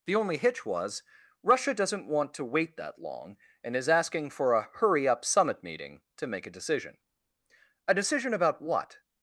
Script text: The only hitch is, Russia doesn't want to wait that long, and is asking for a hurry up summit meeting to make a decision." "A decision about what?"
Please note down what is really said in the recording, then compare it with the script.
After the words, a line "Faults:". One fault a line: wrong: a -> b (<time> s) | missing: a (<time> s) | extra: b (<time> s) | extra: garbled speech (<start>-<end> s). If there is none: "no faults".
The only hitch was, Russia doesn't want to wait that long, and is asking for a hurry up summit meeting to make a decision." "A decision about what?"
Faults:
wrong: is -> was (0.7 s)